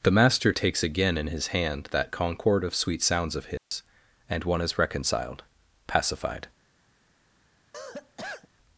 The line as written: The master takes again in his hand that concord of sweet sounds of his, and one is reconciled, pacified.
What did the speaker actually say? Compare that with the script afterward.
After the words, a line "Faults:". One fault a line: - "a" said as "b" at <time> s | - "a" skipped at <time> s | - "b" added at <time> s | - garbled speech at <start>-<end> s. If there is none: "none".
The master takes again in his hand that concord of sweet sounds of his, and one is reconciled, pacified.
Faults:
none